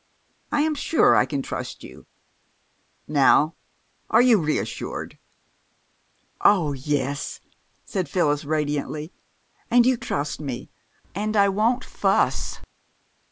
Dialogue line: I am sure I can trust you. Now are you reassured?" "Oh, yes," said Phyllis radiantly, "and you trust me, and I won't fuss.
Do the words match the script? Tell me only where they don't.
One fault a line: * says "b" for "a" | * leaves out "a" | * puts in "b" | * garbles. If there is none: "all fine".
all fine